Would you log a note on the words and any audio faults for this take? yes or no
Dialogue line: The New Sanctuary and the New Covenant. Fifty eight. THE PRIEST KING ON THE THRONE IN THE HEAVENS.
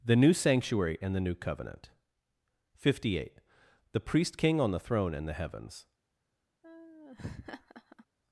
yes